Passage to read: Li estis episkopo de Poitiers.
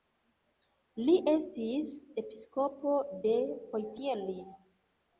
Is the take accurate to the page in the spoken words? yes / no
yes